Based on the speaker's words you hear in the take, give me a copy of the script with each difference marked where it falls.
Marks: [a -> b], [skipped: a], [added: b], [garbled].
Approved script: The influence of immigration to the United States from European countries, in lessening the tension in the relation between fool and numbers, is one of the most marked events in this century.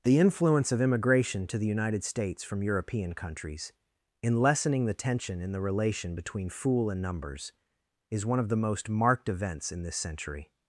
The influence of immigration to the United States from European countries, in lessening the tension in the relation between fool and numbers, is one of the most marked events in this century.